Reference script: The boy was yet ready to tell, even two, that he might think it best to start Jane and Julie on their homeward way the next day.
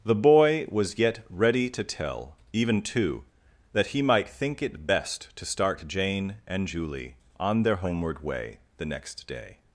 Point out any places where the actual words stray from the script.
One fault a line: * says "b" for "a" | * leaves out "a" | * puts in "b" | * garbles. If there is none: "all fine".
all fine